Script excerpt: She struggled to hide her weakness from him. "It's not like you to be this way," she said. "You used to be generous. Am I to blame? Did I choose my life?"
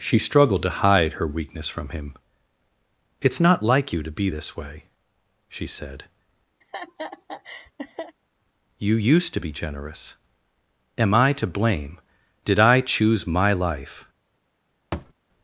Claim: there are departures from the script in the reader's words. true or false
false